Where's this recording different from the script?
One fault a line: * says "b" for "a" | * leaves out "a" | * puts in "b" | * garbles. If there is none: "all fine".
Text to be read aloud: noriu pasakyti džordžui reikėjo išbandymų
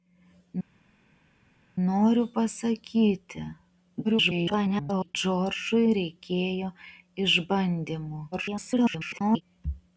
* garbles
* garbles